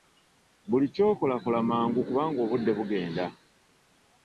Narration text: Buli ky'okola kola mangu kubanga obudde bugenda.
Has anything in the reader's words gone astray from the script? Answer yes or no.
no